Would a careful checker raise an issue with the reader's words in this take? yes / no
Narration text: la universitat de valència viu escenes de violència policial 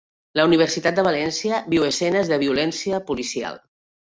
no